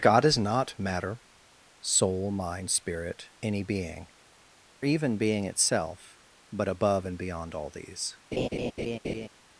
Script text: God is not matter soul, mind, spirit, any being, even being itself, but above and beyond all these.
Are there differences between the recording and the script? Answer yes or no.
no